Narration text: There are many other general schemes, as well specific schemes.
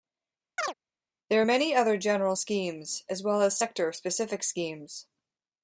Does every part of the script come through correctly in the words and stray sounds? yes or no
no